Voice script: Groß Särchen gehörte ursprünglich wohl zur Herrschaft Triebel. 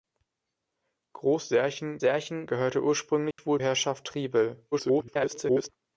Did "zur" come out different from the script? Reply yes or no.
yes